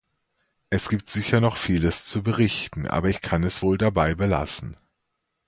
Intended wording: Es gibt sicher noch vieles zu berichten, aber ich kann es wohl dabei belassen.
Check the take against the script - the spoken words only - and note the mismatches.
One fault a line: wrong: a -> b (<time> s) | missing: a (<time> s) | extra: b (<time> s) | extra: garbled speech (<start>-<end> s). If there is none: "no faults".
no faults